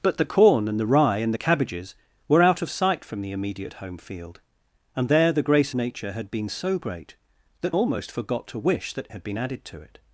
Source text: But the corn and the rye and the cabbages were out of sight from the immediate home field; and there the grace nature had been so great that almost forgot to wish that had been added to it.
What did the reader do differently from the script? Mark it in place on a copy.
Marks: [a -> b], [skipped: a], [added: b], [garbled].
But the corn and the rye and the cabbages were out of sight from the immediate home field; and there the grace nature had been so great that almost forgot to wish that had been added to it.